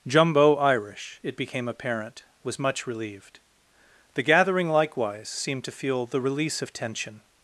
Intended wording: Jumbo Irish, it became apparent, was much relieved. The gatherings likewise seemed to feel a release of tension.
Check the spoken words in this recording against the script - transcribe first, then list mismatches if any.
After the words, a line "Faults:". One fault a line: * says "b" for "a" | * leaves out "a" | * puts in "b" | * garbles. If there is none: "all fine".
Jumbo Irish, it became apparent, was much relieved. The gathering likewise seemed to feel the release of tension.
Faults:
* says "gathering" for "gatherings"
* says "the" for "a"